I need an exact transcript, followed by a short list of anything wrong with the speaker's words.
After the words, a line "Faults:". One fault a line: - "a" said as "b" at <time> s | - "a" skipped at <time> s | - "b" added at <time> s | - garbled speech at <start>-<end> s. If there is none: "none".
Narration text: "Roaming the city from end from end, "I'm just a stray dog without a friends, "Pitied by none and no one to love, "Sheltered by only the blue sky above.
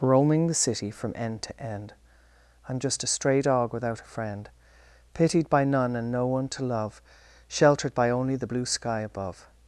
"Roaming the city from end to end, "I'm just a stray dog without a friend, "Pitied by none and no one to love, "Sheltered by only the blue sky above.
Faults:
- "from" said as "to" at 1.4 s
- "friends" said as "friend" at 4.0 s